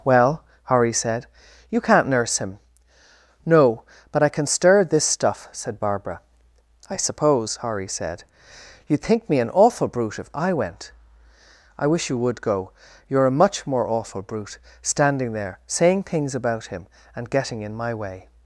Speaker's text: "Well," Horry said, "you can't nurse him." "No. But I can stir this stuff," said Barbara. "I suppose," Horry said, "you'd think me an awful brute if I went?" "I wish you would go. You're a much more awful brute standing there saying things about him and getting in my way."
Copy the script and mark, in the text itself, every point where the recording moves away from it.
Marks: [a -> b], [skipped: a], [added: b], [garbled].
"Well," Horry said, "you can't nurse him." "No. But I can stir this stuff," said Barbara. "I suppose," Horry said, "you'd think me an awful brute if I went?" "I wish you would go. You're a much more awful brute standing there saying things about him and getting in my way."